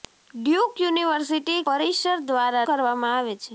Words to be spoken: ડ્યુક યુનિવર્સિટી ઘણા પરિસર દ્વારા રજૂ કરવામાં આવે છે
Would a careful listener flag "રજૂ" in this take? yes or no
yes